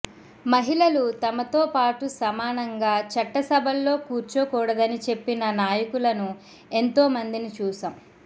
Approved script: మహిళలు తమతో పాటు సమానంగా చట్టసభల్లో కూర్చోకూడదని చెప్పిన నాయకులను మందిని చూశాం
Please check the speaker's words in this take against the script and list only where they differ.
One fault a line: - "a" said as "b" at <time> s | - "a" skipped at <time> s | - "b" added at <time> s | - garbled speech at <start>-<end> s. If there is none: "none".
- "ఎంతో" added at 6.7 s